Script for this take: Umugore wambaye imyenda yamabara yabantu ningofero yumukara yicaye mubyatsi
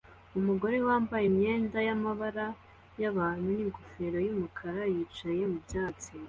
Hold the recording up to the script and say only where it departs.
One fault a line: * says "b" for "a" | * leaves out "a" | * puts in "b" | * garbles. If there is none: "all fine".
all fine